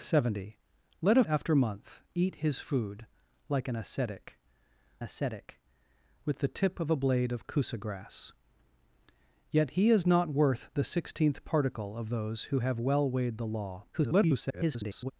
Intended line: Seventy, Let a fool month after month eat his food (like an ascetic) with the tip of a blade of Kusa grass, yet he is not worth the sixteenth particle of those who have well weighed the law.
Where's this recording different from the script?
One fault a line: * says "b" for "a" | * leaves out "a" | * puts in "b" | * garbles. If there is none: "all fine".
* leaves out "fool month"
* puts in "ascetic"
* garbles